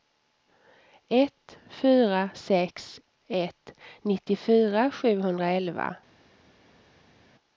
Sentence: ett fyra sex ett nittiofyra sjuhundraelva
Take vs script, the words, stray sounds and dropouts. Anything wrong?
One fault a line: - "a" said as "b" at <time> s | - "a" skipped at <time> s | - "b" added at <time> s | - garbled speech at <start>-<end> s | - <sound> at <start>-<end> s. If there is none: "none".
none